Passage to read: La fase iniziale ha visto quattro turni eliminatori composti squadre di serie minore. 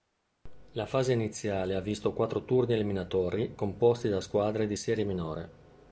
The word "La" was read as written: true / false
true